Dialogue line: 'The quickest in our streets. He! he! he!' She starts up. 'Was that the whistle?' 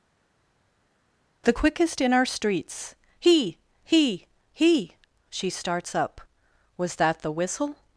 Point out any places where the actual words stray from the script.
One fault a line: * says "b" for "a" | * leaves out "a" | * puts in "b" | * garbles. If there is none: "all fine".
all fine